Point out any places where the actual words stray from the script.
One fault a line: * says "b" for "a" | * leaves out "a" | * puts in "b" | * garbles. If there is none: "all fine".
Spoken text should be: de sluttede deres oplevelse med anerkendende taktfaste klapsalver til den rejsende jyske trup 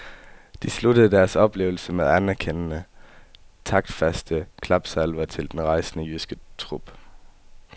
all fine